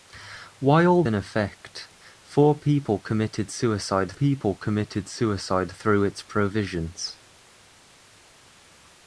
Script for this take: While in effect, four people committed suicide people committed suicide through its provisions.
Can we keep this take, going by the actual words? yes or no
yes